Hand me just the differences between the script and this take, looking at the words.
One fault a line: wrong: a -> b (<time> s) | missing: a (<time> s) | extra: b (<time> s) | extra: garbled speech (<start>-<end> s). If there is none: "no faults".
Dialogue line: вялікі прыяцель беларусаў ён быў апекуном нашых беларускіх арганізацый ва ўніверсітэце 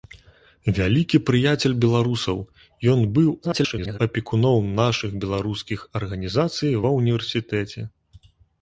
extra: garbled speech (3.4-4.0 s)